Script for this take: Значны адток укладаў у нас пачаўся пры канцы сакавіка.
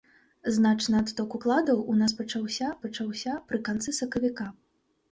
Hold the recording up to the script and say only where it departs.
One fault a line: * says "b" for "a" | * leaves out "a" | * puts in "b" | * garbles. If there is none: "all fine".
* puts in "пачаўся"